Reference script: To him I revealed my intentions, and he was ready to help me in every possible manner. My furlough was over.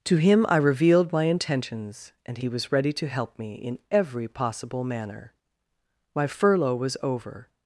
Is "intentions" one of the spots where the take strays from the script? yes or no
no